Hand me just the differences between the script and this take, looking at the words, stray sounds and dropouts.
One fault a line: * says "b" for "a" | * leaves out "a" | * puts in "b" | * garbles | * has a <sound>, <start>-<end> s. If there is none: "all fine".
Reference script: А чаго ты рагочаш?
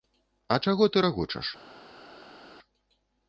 all fine